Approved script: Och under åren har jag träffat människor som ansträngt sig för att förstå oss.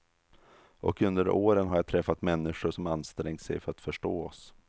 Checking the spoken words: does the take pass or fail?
pass